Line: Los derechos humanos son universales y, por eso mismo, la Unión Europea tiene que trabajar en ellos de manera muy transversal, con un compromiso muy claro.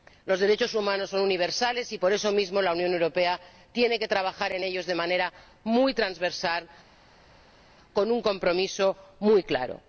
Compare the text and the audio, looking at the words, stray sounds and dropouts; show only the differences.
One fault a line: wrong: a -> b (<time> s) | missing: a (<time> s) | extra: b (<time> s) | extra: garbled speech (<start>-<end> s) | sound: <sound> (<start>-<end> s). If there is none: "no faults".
no faults